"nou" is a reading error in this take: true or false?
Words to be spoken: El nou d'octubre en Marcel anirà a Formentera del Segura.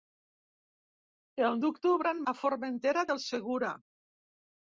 true